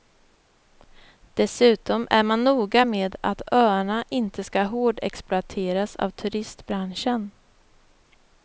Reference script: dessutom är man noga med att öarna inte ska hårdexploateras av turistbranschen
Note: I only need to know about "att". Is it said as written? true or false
true